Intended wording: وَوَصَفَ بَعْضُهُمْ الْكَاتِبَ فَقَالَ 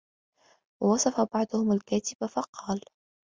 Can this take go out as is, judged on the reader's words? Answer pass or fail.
pass